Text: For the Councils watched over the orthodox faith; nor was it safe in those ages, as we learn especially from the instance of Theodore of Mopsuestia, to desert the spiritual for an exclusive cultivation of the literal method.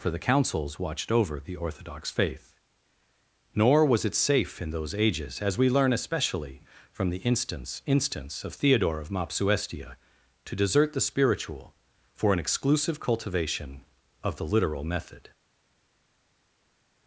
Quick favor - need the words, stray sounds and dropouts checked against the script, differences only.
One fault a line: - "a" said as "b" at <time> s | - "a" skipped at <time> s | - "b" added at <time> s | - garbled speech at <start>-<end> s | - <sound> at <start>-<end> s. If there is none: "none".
- "instance" added at 7.8 s